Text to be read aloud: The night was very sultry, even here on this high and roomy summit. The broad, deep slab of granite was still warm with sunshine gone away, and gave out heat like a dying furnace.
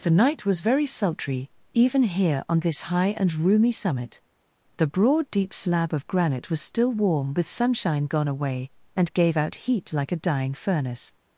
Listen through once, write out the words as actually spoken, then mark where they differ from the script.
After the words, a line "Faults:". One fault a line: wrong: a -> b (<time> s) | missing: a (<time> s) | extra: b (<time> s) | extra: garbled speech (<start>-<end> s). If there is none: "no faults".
The night was very sultry, even here on this high and roomy summit. The broad, deep slab of granite was still warm with sunshine gone away, and gave out heat like a dying furnace.
Faults:
no faults